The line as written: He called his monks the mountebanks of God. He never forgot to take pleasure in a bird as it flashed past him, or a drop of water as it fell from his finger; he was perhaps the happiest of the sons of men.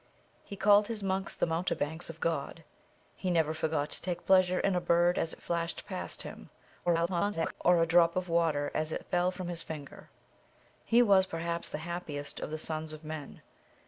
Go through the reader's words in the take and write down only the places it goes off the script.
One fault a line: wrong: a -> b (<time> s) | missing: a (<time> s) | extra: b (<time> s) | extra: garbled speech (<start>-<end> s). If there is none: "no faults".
extra: garbled speech (6.9-7.5 s)